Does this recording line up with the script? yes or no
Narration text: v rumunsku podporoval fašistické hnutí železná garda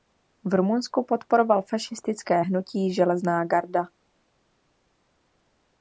yes